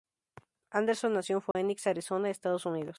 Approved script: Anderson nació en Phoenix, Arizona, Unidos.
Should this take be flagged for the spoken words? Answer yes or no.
yes